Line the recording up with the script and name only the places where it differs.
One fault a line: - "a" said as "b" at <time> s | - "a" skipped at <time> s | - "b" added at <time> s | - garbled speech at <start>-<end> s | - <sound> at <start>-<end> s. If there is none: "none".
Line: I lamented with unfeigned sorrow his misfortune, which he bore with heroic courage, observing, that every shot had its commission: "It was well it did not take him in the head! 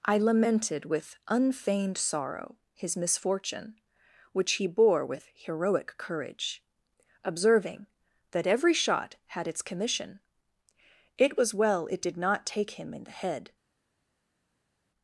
none